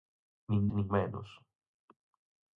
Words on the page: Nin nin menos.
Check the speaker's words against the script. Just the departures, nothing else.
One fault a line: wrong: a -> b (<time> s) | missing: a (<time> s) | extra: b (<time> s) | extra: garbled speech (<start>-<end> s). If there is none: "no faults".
no faults